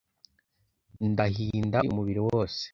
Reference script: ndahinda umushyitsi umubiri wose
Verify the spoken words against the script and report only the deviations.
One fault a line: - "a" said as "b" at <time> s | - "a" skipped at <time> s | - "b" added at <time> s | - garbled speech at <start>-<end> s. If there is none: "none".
- "umushyitsi" skipped at 1.8 s